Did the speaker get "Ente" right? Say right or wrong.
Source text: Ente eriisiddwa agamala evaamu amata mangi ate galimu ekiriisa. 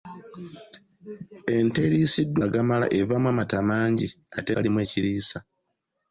right